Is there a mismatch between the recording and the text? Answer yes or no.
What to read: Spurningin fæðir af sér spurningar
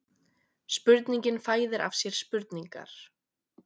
no